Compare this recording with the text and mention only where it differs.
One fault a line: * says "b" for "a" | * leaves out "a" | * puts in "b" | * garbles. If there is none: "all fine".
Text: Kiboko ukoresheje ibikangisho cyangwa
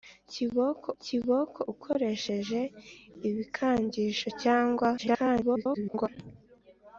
* puts in "kiboko"
* garbles